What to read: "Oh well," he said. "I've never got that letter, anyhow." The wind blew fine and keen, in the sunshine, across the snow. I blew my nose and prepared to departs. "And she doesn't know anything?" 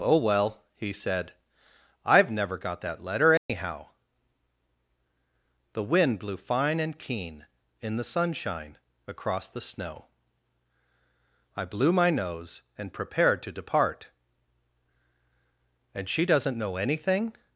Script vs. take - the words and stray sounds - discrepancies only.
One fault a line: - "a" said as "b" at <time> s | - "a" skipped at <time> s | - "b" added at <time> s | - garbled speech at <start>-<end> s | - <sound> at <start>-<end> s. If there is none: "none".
- dropout at 3.4-3.5 s
- "departs" said as "depart" at 13.6 s